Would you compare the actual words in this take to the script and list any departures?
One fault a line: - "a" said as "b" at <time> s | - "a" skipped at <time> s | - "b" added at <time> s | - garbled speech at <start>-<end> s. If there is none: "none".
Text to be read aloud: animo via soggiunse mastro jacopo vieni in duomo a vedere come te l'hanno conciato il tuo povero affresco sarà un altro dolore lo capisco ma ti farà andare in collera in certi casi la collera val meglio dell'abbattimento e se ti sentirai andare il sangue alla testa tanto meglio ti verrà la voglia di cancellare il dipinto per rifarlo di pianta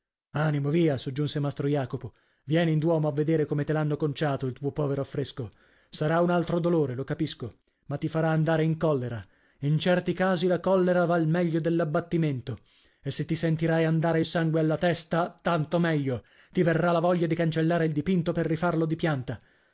none